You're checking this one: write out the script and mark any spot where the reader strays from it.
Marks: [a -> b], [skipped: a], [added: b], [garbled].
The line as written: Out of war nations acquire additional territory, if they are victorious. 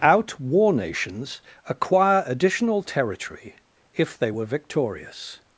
Out [skipped: of] war nations acquire additional territory, if they [are -> were] victorious.